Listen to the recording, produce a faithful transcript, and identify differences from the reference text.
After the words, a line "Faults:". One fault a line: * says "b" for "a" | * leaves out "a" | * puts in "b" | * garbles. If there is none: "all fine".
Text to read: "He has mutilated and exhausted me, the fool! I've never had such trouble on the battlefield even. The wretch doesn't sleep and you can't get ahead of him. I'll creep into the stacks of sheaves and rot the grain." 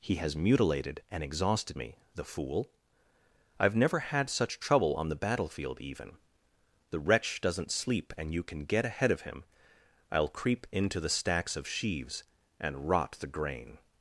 "He has mutilated and exhausted me, the fool! I've never had such trouble on the battlefield even. The wretch doesn't sleep and you can get ahead of him. I'll creep into the stacks of sheaves and rot the grain."
Faults:
* says "can" for "can't"